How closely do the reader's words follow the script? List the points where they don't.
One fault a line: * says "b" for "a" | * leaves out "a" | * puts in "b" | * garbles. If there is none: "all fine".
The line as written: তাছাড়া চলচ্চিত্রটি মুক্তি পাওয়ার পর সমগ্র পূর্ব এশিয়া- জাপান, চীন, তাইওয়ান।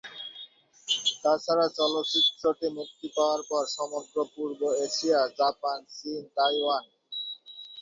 all fine